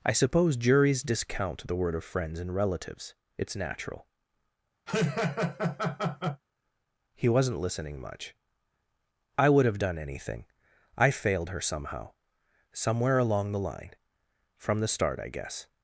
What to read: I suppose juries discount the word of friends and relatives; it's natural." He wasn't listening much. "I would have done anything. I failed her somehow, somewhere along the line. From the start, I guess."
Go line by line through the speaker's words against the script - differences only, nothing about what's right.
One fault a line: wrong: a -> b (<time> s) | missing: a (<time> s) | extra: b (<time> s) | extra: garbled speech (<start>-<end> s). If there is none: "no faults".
no faults